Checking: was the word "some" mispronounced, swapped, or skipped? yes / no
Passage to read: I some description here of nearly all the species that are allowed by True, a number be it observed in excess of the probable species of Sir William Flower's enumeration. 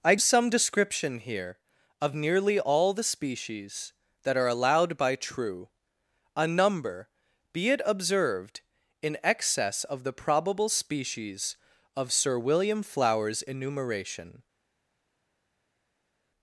no